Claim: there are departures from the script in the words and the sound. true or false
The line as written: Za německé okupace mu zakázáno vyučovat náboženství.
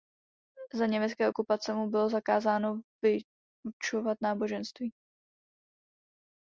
true